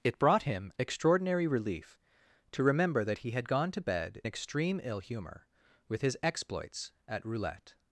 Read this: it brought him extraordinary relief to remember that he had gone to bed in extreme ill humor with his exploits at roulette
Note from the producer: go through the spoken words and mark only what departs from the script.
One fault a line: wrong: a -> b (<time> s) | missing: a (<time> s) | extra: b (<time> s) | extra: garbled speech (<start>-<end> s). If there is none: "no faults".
missing: in (4.2 s)